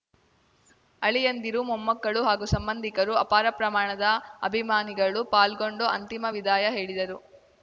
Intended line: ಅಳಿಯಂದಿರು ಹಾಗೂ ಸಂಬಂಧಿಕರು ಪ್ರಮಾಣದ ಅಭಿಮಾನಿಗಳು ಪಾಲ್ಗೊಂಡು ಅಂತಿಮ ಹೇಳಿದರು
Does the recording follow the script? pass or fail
fail